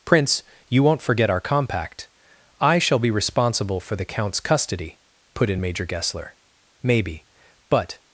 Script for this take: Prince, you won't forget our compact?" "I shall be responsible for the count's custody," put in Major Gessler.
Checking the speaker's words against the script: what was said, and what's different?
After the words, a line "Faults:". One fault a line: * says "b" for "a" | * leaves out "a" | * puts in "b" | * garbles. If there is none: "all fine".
Prince, you won't forget our compact?" "I shall be responsible for the count's custody," put in Major Gessler. "Maybe, but
Faults:
* puts in "Maybe but"